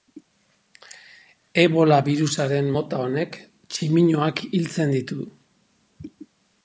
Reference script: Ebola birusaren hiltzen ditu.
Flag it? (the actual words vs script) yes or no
yes